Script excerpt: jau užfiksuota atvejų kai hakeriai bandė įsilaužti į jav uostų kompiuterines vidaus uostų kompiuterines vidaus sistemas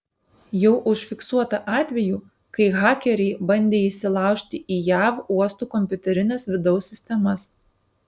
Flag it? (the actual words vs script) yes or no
yes